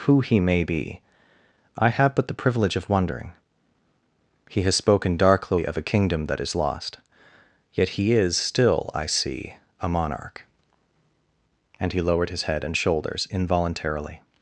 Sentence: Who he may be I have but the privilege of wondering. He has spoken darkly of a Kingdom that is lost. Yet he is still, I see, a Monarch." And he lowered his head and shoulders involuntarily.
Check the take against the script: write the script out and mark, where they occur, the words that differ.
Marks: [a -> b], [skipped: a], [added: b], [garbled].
Who he may be I have but the privilege of wondering. He has spoken darkly of a Kingdom that is lost. Yet he is still, I see, a Monarch." And he lowered his head and shoulders involuntarily.